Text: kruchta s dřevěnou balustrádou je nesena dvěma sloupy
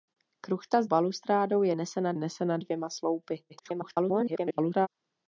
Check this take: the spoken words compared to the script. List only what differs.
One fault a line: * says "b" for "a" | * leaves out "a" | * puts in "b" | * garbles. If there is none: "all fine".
* leaves out "dřevěnou"
* puts in "nesena"
* garbles